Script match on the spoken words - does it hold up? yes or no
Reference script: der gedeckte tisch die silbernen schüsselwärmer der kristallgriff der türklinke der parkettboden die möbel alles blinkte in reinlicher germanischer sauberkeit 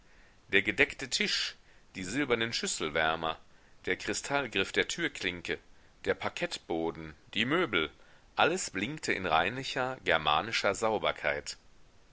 yes